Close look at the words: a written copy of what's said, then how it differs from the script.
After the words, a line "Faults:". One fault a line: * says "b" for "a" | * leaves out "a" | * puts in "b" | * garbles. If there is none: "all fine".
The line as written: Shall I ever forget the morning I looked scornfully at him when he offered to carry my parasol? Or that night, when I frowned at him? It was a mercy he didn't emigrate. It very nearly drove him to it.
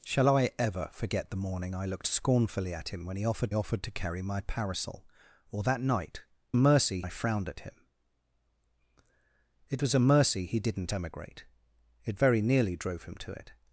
Shall I ever forget the morning I looked scornfully at him when he offered offered to carry my parasol? Or that night, mercy I frowned at him? It was a mercy he didn't emigrate. It very nearly drove him to it.
Faults:
* puts in "offered"
* says "mercy" for "when"